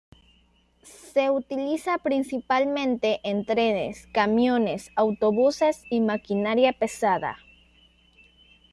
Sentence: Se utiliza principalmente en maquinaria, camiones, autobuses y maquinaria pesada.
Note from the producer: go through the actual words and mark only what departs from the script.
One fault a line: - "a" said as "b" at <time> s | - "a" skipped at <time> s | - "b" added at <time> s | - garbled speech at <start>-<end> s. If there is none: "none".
- "maquinaria" said as "trenes" at 3.4 s